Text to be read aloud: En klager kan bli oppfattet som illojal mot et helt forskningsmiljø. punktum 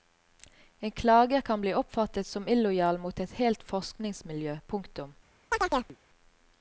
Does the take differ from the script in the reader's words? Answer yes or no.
no